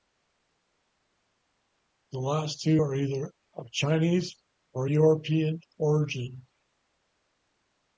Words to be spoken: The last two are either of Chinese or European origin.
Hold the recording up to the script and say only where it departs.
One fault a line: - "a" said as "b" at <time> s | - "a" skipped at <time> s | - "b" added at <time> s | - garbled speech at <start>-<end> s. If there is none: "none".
none